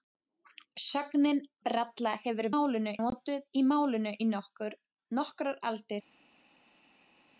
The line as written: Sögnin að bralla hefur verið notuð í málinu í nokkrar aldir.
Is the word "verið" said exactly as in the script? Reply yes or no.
no